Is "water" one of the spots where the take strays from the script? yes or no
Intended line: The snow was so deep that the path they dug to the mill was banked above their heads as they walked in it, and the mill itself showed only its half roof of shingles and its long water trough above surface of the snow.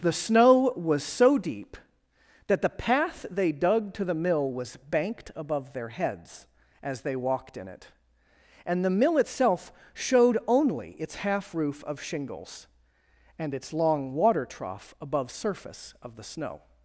no